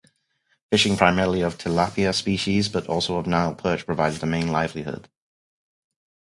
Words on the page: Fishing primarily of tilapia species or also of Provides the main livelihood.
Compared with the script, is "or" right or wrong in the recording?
wrong